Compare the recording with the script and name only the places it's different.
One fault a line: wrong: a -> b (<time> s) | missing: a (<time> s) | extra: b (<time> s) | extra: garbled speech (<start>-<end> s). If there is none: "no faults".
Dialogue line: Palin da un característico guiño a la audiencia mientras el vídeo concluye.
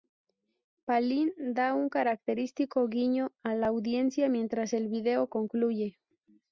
no faults